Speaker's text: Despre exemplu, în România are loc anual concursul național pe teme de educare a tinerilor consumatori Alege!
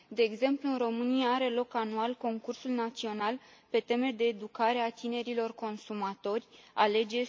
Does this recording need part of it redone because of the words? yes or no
yes